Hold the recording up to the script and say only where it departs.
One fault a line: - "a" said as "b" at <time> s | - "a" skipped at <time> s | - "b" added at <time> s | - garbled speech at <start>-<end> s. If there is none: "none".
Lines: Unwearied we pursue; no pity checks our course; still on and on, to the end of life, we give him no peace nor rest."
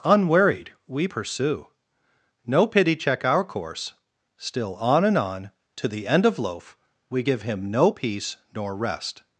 - "checks" said as "check" at 2.9 s
- "life" said as "loaf" at 6.4 s